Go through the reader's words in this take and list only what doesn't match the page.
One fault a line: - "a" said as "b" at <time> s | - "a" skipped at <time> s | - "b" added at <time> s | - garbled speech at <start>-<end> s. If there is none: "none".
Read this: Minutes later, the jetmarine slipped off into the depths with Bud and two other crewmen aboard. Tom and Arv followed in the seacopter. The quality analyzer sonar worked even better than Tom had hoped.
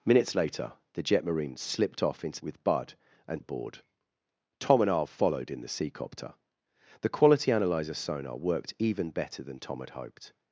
- "the depths" skipped at 2.4 s
- "two other crewmen" skipped at 3.4 s